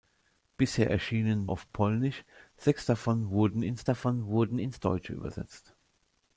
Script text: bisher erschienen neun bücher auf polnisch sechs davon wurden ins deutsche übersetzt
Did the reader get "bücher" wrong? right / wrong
wrong